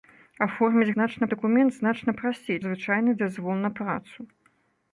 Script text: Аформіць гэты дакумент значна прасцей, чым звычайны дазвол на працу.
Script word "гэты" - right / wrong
wrong